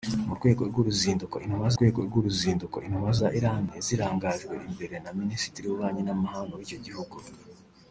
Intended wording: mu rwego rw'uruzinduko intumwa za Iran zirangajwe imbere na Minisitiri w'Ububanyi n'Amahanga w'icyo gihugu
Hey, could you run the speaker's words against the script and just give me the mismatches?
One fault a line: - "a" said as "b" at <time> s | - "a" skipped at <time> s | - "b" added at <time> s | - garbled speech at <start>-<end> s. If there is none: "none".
- "rwego rw'uruzinduko intumwa" added at 1.8 s